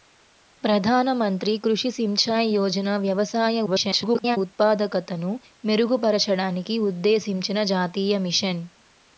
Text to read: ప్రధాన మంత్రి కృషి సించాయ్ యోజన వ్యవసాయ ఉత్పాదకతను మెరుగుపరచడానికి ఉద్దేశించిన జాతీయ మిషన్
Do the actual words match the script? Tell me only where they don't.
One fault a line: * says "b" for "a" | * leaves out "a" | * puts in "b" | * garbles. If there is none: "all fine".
* garbles